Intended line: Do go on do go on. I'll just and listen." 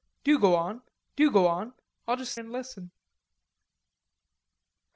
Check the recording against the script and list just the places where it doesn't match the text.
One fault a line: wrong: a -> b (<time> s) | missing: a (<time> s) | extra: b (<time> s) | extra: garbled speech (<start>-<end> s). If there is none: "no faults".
no faults